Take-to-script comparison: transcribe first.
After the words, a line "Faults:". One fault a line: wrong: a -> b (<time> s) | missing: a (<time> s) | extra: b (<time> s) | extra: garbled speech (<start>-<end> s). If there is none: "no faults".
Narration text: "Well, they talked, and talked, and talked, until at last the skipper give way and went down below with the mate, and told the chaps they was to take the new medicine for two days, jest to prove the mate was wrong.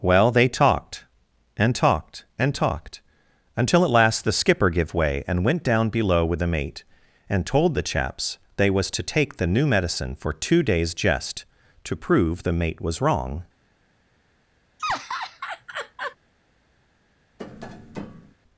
"Well, they talked, and talked, and talked, until at last the skipper give way and went down below with the mate, and told the chaps they was to take the new medicine for two days, jest to prove the mate was wrong.
Faults:
no faults